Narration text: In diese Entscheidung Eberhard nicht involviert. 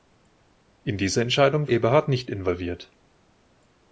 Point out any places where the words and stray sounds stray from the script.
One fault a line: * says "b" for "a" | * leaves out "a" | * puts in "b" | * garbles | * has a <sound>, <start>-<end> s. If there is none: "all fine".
all fine